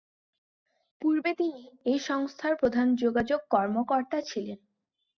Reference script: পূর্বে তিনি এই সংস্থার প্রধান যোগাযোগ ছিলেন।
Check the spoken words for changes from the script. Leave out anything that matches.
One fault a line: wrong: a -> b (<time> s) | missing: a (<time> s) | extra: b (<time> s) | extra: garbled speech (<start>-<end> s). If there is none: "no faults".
extra: কর্মকর্তা (3.5 s)